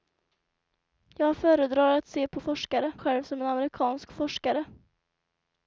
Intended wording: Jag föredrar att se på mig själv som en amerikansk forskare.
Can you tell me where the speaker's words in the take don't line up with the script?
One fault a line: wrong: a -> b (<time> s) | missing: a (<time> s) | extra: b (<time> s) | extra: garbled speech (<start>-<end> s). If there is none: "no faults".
wrong: mig -> forskare (2.4 s)